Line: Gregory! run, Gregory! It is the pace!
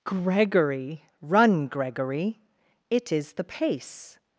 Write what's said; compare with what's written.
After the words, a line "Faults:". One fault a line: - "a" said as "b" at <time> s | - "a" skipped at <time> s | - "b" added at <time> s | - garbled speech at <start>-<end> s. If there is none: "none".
Gregory! run, Gregory! It is the pace!
Faults:
none